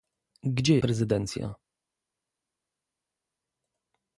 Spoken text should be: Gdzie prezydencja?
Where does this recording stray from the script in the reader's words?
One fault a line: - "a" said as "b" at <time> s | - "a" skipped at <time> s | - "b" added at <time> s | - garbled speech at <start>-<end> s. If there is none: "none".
none